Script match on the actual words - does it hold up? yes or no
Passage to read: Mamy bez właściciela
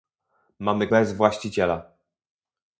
yes